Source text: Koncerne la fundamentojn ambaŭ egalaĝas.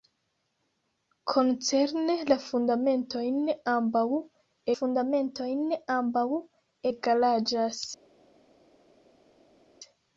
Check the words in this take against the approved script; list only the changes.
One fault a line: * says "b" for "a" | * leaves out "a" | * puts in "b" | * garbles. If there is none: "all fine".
* puts in "fundamentojn ambaŭ"